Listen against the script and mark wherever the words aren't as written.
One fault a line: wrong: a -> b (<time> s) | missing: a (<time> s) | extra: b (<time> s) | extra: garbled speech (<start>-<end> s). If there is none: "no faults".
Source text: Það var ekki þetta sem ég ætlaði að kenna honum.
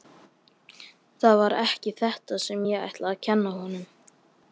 no faults